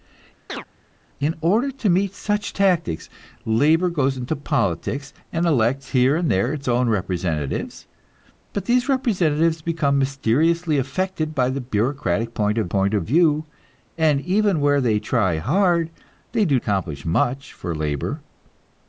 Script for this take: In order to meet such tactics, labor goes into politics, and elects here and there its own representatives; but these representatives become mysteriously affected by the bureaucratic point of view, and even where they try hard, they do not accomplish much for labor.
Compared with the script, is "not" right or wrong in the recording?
wrong